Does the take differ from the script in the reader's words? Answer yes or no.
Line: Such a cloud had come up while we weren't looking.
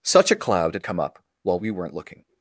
no